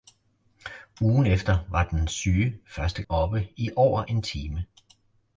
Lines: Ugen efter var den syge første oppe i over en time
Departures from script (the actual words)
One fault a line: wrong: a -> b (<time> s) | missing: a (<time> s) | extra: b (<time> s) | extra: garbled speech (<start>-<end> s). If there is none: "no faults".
no faults